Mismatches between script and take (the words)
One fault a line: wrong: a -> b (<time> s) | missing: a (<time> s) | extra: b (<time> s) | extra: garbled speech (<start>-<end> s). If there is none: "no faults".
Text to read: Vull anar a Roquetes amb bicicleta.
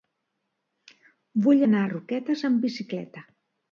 no faults